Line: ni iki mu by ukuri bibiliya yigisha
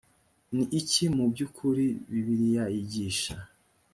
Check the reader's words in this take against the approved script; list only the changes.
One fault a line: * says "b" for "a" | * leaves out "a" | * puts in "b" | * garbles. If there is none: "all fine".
all fine